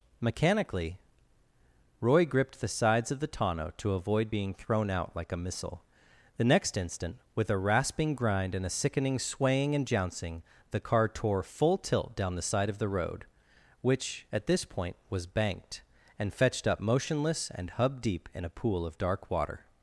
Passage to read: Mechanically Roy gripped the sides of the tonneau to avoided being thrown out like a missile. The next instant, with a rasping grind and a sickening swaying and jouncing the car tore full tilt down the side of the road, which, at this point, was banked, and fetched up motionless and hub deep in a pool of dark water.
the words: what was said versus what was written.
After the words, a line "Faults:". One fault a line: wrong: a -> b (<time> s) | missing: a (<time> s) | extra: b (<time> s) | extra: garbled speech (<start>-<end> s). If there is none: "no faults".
Mechanically Roy gripped the sides of the tonneau to avoid being thrown out like a missile. The next instant, with a rasping grind and a sickening swaying and jouncing the car tore full tilt down the side of the road, which, at this point, was banked, and fetched up motionless and hub deep in a pool of dark water.
Faults:
wrong: avoided -> avoid (3.9 s)